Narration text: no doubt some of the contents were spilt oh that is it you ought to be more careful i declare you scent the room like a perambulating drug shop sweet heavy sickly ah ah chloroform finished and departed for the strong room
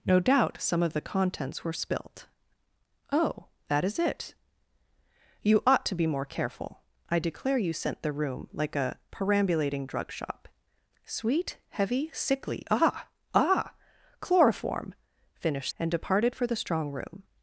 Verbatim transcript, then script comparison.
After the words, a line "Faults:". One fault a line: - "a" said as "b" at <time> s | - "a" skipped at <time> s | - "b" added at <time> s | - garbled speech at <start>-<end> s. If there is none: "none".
no doubt some of the contents were spilt oh that is it you ought to be more careful i declare you scent the room like a perambulating drug shop sweet heavy sickly ah ah chloroform finished and departed for the strong room
Faults:
none